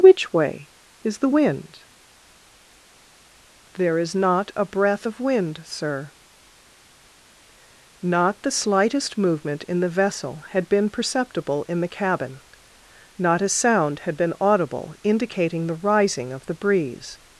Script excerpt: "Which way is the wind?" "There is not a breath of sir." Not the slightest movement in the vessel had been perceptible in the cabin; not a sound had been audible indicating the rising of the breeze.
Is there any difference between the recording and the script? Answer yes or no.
yes